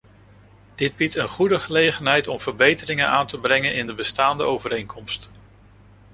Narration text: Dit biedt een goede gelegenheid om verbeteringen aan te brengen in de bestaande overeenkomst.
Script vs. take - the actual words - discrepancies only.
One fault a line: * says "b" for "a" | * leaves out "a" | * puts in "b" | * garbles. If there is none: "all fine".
all fine